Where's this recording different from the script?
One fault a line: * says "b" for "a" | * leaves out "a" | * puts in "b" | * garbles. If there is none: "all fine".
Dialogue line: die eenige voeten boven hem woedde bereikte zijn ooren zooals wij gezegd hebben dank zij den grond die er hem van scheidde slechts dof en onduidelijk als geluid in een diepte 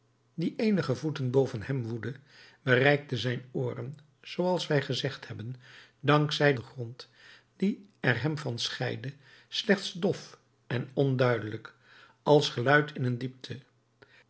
all fine